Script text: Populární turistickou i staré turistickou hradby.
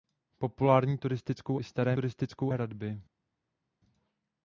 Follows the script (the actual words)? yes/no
yes